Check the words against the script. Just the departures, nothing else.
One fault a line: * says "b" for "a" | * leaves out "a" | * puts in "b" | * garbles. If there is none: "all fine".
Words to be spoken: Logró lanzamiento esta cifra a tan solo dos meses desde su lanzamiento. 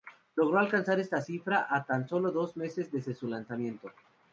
* says "alcanzar" for "lanzamiento"